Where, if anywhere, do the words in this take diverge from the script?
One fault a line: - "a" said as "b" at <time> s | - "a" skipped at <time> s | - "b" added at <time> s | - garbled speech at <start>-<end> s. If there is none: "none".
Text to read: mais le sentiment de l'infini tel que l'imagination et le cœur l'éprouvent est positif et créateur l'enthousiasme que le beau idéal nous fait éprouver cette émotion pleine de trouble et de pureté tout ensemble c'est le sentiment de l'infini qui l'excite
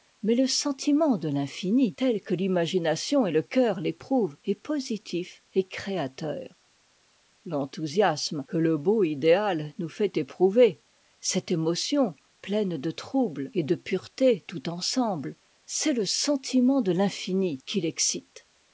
none